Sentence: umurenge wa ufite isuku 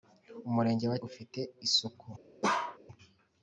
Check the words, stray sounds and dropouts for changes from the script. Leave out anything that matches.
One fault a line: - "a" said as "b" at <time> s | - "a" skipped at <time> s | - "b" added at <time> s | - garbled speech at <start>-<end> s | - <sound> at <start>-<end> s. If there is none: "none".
- bark at 2.4-2.8 s